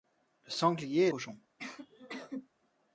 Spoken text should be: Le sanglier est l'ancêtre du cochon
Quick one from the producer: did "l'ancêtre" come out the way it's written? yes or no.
no